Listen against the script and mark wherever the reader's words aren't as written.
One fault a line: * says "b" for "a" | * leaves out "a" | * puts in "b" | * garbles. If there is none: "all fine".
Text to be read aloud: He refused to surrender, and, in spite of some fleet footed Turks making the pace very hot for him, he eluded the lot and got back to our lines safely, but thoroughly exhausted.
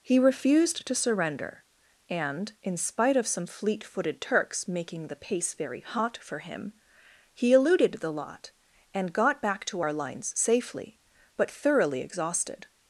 all fine